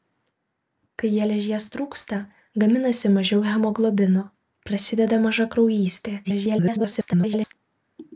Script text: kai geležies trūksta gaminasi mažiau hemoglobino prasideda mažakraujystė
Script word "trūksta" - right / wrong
right